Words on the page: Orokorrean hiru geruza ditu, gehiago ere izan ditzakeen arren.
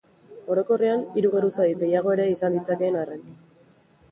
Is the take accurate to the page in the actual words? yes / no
no